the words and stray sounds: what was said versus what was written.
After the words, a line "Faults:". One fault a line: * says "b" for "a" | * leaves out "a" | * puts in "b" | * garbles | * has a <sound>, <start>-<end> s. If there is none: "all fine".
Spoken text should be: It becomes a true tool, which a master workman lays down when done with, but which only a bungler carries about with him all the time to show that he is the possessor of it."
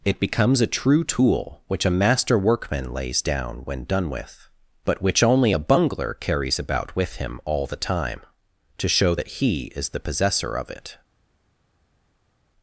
It becomes a true tool, which a master workman lays down when done with, but which only a bungler carries about with him all the time to show that he is the possessor of it."
Faults:
all fine